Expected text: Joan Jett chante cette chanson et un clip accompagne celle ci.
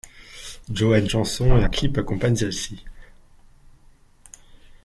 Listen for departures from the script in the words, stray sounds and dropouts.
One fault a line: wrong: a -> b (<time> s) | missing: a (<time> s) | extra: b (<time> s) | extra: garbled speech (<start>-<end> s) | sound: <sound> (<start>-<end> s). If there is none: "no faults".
missing: Jett chante cette (1.1 s)
missing: un (1.6 s)